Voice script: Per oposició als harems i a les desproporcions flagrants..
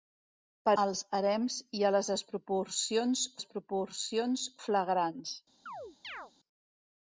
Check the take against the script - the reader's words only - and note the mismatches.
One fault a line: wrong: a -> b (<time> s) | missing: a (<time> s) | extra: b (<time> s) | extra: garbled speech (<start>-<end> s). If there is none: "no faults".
missing: oposició (0.7 s)
extra: desproporcions (3.4 s)